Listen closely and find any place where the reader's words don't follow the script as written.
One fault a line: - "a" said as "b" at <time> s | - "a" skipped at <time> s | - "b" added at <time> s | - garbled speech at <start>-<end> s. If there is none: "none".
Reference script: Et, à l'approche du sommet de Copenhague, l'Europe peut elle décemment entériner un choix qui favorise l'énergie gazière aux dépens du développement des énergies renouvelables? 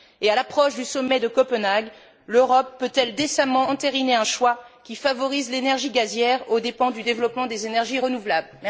none